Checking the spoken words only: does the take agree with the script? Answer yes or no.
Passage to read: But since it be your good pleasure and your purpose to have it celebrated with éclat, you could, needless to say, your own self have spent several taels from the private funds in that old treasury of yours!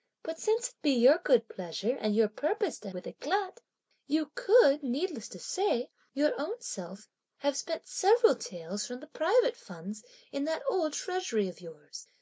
no